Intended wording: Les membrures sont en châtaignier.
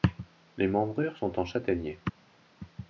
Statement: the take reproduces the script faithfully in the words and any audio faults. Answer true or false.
true